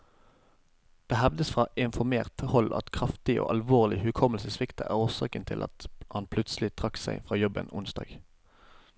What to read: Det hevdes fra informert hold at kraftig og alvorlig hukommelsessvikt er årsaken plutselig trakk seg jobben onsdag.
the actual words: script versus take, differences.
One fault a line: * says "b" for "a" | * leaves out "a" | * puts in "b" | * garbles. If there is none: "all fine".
* puts in "til at han"
* puts in "fra"